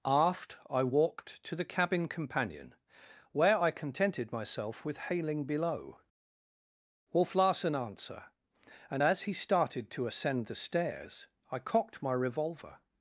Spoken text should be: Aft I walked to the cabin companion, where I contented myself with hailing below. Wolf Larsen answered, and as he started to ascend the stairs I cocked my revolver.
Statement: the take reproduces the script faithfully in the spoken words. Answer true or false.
false